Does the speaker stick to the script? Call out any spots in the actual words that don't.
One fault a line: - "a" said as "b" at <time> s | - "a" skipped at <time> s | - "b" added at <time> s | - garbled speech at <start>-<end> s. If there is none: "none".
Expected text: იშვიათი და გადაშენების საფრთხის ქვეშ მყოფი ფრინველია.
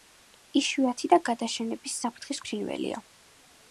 - "ქვეშ მყოფი" skipped at 2.4 s